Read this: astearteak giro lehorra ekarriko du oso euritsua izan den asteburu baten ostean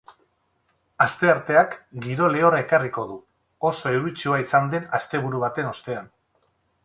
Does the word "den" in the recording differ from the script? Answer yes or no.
no